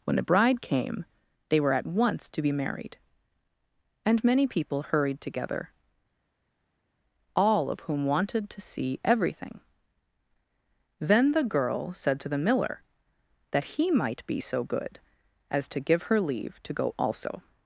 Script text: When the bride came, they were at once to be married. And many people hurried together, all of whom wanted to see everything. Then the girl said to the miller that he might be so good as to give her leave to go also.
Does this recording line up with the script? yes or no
yes